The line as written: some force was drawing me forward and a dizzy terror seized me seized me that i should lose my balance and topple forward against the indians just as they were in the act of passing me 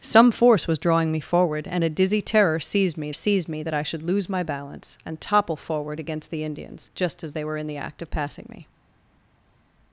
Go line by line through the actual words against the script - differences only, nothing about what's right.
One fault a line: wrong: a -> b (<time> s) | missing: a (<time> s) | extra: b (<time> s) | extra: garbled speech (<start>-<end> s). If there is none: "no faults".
no faults